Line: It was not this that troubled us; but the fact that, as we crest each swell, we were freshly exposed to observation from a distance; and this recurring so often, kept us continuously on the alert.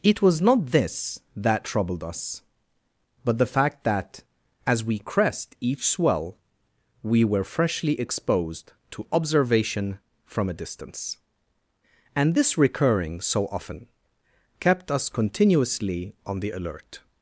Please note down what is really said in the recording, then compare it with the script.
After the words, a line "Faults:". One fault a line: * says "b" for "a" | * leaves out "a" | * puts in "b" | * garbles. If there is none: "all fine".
It was not this that troubled us; but the fact that, as we crest each swell, we were freshly exposed to observation from a distance; and this recurring so often, kept us continuously on the alert.
Faults:
all fine